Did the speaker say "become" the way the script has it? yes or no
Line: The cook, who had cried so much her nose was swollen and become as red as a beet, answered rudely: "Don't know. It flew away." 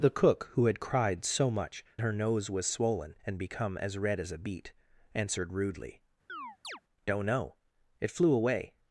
yes